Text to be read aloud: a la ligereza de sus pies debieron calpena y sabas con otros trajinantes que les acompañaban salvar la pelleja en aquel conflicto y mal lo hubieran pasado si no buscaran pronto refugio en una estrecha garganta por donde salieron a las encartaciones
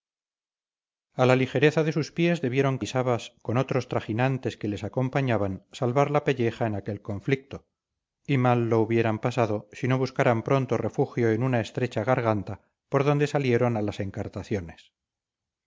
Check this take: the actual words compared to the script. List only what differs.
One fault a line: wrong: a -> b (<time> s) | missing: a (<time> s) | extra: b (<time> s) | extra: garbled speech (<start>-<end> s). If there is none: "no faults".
missing: calpena (2.8 s)